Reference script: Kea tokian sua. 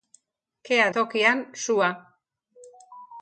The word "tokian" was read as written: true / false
true